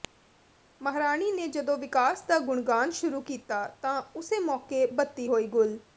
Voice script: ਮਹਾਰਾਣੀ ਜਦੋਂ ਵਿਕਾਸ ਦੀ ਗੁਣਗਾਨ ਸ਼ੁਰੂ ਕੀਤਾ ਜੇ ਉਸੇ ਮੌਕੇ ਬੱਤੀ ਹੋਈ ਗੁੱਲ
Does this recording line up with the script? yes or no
no